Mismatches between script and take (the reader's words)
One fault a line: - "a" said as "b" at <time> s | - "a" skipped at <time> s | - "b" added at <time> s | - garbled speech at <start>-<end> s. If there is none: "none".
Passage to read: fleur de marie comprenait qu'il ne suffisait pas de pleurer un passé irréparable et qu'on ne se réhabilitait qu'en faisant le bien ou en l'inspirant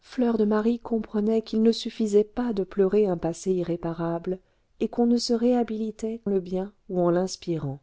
- "qu'en faisant" skipped at 6.2 s